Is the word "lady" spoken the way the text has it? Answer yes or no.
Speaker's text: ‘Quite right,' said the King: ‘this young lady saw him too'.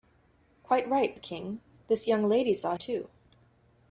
yes